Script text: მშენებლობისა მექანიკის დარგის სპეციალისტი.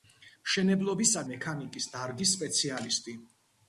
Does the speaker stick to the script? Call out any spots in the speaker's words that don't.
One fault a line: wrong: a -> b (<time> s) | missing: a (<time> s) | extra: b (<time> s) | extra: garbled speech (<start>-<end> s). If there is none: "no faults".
no faults